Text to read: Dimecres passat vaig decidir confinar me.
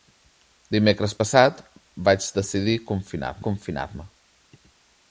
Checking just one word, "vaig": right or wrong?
right